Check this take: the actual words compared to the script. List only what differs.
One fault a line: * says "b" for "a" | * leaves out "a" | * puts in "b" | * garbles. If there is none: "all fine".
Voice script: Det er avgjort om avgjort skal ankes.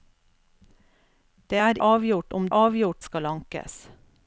all fine